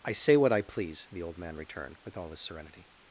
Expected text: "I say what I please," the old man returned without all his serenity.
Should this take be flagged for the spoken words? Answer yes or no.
yes